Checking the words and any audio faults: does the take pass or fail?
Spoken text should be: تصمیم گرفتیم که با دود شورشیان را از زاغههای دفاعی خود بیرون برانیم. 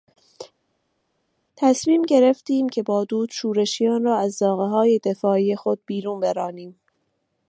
pass